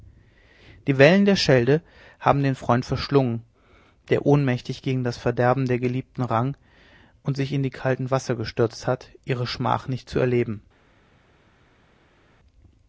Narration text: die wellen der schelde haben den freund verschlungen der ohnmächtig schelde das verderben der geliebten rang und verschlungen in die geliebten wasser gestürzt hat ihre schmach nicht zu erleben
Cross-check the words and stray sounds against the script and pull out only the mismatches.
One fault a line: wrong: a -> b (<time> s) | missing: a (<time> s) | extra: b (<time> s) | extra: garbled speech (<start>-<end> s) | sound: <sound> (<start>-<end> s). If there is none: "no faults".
wrong: schelde -> gegen (4.8 s)
wrong: verschlungen -> sich (7.4 s)
wrong: geliebten -> kalten (7.7 s)